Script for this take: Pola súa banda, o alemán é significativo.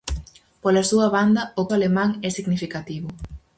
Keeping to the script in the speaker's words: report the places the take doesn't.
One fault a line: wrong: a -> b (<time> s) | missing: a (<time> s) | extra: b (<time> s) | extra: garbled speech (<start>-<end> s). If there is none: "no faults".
no faults